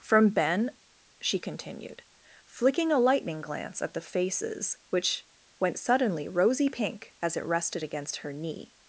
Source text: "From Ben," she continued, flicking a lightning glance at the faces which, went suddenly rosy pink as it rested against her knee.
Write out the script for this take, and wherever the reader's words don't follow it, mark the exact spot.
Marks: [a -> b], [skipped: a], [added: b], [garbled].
"From Ben," she continued, flicking a lightning glance at the faces which, went suddenly rosy pink as it rested against her knee.